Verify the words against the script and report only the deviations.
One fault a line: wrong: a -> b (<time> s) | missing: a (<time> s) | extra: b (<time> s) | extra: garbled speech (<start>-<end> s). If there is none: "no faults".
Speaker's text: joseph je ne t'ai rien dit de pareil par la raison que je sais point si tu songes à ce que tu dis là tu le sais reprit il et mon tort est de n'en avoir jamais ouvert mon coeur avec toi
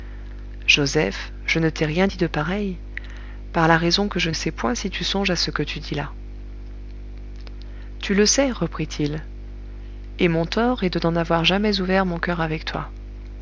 no faults